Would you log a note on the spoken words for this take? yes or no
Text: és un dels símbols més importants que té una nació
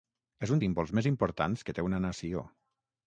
yes